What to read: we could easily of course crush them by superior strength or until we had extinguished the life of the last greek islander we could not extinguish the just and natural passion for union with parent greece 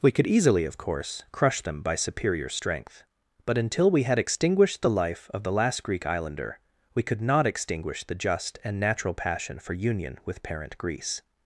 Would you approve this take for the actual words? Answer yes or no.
no